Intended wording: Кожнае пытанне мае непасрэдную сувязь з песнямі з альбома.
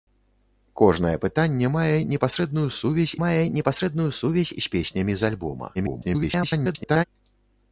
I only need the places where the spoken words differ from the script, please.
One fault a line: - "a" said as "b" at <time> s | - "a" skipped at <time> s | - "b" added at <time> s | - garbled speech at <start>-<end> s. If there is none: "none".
- "мае непасрэдную сувязь" added at 3.2 s
- garbled speech at 5.7-7.0 s